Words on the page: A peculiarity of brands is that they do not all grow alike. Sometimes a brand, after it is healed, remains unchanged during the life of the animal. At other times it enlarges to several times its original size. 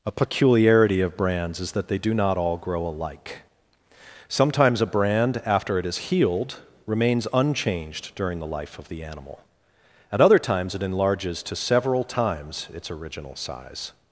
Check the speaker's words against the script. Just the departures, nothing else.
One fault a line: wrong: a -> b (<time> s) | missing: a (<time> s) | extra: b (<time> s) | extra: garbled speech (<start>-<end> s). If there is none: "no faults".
no faults